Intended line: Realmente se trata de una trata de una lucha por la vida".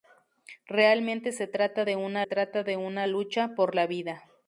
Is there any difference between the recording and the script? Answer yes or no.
no